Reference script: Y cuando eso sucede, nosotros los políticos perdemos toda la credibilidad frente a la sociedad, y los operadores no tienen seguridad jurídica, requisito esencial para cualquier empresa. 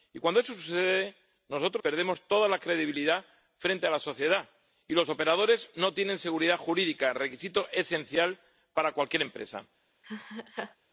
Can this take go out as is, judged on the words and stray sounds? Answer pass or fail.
fail